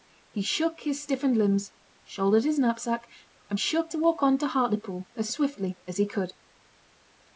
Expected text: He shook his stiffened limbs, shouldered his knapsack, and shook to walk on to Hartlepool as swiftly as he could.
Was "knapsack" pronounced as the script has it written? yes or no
yes